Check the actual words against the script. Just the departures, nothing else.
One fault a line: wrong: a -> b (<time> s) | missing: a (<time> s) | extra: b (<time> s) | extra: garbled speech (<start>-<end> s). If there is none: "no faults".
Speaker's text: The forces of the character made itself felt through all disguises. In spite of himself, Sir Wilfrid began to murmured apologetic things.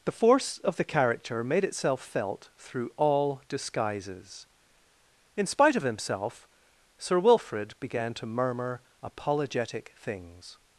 wrong: forces -> force (0.1 s)
wrong: murmured -> murmur (8.2 s)